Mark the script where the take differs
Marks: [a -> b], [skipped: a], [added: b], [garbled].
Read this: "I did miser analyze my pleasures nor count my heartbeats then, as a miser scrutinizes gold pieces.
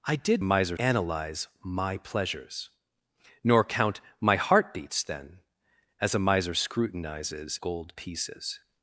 "I did miser analyze my pleasures nor count my heartbeats then, as a miser scrutinizes gold pieces.